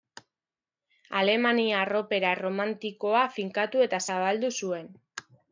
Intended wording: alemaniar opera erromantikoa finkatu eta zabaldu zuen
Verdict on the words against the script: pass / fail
pass